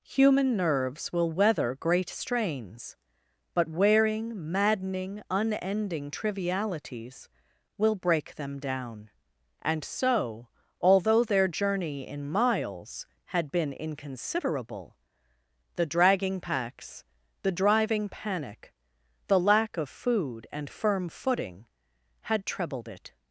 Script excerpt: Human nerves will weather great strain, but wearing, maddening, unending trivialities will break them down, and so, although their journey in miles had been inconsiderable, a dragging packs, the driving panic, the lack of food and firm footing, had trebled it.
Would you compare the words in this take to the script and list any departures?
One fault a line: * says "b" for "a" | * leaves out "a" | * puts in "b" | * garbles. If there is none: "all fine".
* says "strains" for "strain"
* says "the" for "a"